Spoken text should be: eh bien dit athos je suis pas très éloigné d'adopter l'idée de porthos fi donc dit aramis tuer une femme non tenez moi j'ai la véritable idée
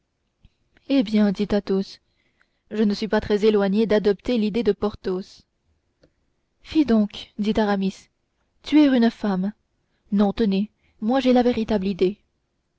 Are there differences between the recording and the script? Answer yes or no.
yes